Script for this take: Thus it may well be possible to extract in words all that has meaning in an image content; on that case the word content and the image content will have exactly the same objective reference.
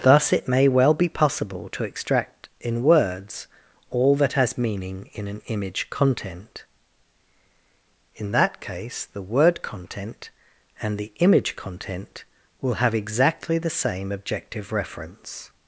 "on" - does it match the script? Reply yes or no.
no